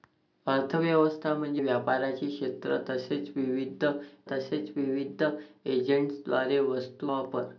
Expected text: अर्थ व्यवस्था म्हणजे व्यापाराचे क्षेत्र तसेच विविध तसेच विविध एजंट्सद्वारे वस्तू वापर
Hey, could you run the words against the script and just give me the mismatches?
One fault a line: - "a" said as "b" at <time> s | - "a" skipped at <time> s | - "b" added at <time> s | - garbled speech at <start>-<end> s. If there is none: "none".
none